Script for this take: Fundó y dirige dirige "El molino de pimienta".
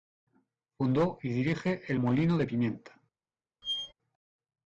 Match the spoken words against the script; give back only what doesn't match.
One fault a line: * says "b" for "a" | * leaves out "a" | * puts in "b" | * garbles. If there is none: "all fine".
* leaves out "dirige"